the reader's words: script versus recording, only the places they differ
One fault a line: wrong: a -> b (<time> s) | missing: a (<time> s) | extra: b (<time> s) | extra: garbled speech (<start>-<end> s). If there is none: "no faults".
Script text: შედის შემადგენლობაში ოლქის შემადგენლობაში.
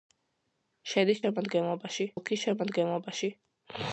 no faults